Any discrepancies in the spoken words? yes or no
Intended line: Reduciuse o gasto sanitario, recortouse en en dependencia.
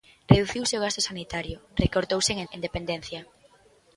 no